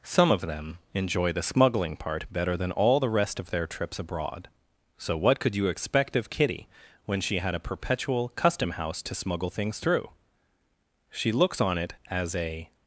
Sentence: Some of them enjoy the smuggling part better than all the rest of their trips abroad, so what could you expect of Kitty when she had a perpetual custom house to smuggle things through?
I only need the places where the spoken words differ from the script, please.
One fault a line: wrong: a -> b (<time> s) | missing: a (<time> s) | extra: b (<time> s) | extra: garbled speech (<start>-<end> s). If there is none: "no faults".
extra: She looks on it as a (11.1 s)